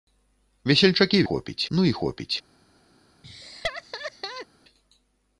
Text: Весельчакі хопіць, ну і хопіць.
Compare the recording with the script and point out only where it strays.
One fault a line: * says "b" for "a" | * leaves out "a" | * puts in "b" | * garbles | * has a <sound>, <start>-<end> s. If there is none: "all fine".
* has a laugh, 3.2-4.5 s